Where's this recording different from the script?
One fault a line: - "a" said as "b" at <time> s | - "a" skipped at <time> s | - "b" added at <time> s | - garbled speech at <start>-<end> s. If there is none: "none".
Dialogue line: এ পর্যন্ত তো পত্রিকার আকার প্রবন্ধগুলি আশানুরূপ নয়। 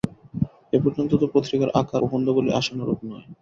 none